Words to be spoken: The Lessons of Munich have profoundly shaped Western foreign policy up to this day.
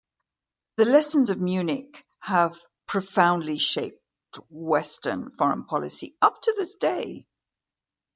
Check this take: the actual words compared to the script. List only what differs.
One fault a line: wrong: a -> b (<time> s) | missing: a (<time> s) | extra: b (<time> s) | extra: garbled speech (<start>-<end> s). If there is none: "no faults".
no faults